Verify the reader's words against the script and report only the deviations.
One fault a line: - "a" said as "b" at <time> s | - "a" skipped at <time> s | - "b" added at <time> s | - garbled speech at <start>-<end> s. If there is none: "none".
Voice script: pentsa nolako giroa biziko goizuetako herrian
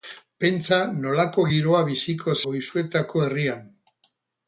none